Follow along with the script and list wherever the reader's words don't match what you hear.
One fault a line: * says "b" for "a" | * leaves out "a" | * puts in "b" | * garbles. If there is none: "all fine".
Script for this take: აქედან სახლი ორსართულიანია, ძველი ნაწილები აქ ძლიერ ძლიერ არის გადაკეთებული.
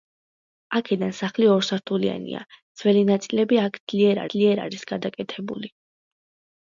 all fine